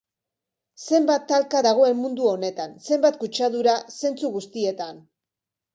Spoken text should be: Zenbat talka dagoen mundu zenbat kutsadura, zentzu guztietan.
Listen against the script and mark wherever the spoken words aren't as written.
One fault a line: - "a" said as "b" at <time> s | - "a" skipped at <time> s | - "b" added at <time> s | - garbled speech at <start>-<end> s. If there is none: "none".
- "honetan" added at 2.3 s